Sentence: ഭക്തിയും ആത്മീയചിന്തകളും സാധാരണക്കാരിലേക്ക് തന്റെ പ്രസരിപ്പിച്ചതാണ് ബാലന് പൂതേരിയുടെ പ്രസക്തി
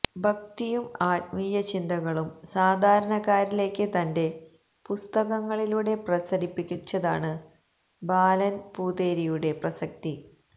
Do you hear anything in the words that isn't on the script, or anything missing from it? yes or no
yes